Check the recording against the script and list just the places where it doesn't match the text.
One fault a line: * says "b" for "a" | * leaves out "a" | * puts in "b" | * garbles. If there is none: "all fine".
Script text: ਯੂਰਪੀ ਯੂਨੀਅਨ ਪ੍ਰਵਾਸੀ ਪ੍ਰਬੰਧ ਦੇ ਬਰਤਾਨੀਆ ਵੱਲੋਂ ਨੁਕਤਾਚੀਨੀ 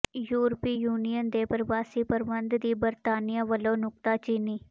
* puts in "ਦੇ"
* says "ਦੀ" for "ਦੇ"